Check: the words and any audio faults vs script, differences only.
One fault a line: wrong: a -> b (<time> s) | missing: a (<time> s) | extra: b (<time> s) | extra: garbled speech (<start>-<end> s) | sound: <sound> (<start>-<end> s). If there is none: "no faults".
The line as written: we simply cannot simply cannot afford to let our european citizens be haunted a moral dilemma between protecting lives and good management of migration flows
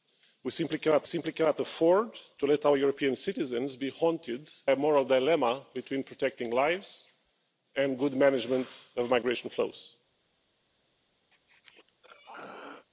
sound: throat clearing (11.3-12.9 s)